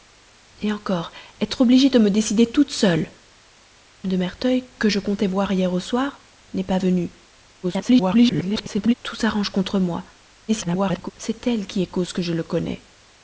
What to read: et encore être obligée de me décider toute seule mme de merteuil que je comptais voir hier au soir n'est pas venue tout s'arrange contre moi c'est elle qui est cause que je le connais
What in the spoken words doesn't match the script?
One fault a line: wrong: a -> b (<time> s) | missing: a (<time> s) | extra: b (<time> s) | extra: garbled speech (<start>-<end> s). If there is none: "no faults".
missing: mme (3.1 s)
extra: garbled speech (7.6-8.9 s)
extra: garbled speech (10.5-11.1 s)